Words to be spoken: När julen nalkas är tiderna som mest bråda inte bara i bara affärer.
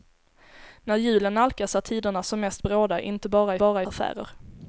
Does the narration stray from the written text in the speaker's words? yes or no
no